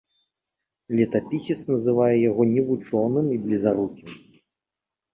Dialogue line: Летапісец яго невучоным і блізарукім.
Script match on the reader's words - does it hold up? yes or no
no